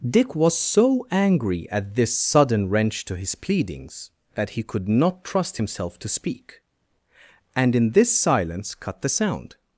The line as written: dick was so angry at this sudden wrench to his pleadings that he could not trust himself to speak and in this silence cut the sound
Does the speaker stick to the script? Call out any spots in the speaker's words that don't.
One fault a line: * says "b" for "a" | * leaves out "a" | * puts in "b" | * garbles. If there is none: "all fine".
all fine